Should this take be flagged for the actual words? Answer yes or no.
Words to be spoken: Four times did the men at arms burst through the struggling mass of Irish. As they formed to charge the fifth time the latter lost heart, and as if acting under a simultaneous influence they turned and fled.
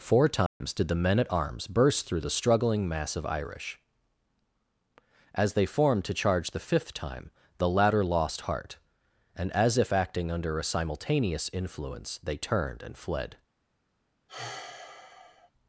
no